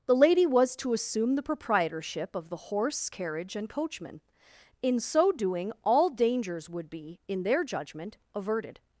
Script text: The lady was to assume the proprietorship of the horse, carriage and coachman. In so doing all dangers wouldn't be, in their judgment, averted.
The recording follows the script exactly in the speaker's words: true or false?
false